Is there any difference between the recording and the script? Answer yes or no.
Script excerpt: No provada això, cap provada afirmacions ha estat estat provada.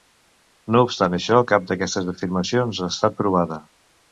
yes